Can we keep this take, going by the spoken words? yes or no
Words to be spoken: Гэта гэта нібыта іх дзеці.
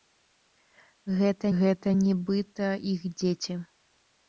yes